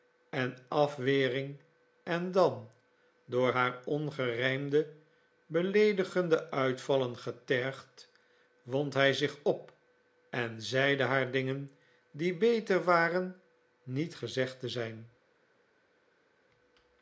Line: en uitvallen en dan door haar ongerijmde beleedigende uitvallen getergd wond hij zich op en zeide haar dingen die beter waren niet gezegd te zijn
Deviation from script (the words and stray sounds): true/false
true